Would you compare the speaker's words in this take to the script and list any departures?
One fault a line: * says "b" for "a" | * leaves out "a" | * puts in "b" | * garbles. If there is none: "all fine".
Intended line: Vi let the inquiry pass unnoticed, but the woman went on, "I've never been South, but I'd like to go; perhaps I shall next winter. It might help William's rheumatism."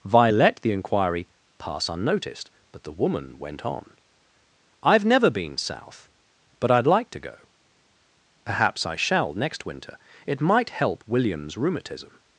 all fine